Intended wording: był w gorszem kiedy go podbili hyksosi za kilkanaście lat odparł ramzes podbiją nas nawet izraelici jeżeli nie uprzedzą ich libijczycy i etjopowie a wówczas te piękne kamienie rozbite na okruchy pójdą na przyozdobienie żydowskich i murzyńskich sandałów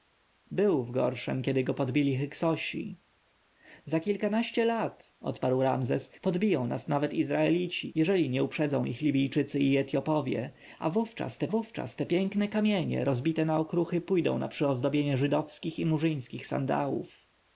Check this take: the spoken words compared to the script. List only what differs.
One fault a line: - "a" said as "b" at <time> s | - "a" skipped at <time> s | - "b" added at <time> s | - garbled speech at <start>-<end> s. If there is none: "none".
- "wówczas te" added at 11.5 s